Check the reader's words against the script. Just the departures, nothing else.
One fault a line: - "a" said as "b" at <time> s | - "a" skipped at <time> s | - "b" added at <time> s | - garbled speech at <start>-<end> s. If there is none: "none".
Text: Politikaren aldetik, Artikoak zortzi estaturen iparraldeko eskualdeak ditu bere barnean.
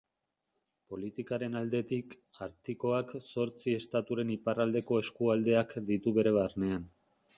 none